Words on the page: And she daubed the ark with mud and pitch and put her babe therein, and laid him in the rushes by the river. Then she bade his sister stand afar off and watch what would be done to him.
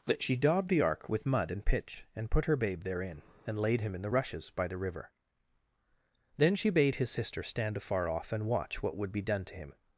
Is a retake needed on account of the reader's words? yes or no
yes